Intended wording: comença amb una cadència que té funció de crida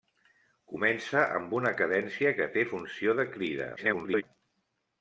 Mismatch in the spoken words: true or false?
true